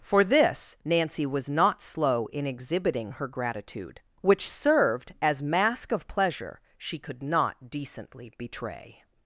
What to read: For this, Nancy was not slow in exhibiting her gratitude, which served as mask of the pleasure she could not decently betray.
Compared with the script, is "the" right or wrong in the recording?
wrong